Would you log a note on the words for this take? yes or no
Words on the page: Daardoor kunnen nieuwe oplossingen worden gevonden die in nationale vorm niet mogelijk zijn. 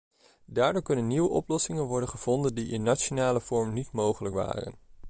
yes